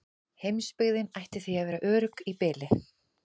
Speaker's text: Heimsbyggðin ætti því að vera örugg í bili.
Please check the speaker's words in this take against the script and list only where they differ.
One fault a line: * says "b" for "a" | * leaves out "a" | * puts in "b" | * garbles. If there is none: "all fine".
all fine